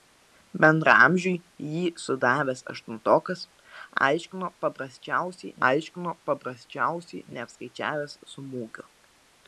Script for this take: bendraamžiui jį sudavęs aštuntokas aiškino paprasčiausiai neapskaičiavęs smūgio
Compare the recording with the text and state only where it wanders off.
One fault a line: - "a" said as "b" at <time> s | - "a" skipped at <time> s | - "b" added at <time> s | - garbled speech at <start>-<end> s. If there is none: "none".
- "aiškino paprasčiausiai" added at 5.7 s